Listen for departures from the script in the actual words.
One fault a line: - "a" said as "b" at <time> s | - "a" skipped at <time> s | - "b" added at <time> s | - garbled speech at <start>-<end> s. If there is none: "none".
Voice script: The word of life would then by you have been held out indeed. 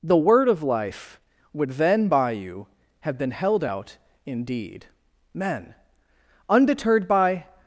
- "Men undeterred by" added at 5.3 s